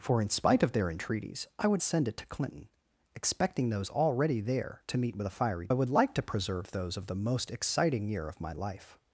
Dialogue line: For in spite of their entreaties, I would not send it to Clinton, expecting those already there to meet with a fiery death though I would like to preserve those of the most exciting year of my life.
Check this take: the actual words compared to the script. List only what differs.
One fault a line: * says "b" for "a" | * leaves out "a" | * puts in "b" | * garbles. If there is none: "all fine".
* leaves out "not"
* leaves out "death though"